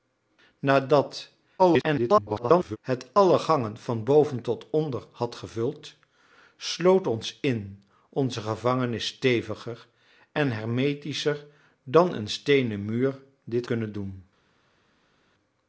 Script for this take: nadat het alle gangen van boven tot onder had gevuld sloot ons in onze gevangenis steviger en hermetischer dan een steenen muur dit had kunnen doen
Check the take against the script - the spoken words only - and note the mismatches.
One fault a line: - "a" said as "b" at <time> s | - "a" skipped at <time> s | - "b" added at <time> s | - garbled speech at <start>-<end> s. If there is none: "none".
- garbled speech at 1.6-2.8 s
- "had" skipped at 13.7 s